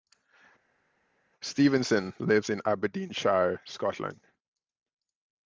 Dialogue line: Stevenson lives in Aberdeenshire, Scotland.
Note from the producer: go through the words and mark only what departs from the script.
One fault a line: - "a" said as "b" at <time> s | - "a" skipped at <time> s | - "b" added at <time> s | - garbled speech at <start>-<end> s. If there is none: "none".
none